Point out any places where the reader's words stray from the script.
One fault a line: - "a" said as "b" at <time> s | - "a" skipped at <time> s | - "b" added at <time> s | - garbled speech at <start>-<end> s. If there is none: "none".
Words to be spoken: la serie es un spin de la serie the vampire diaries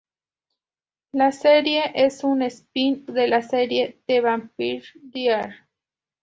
none